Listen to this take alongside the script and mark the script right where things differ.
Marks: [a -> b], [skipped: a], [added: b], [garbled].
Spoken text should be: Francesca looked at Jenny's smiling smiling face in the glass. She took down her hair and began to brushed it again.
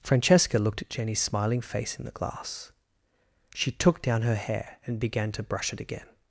Francesca looked at Jenny's smiling [skipped: smiling] face in the glass. She took down her hair and began to [brushed -> brush] it again.